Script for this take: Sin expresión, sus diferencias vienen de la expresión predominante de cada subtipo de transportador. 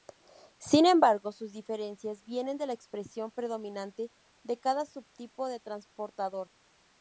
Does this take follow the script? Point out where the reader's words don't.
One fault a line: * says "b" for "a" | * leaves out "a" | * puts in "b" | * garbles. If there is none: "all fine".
* says "embargo" for "expresión"